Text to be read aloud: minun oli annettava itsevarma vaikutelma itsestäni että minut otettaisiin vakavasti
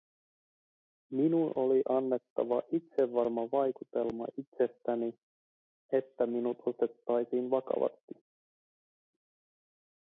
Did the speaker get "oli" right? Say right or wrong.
right